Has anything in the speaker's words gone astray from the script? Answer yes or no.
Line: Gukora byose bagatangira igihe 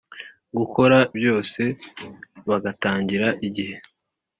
no